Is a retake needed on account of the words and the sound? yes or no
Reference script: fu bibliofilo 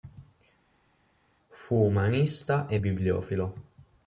yes